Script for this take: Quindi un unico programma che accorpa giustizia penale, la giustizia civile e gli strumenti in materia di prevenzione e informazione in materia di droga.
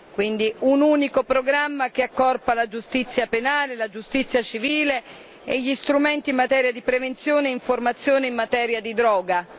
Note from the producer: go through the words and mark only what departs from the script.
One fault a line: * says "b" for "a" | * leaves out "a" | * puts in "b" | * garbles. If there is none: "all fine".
* puts in "la"